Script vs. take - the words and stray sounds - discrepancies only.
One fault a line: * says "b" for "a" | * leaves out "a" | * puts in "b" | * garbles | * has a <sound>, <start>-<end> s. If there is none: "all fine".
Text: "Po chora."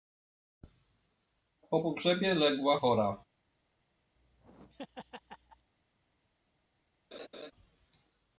* puts in "pogrzebie legła"
* has a laugh, 4.2-5.7 s
* has a laugh, 7.1-7.5 s